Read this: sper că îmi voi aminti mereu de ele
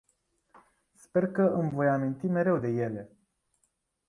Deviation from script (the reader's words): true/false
false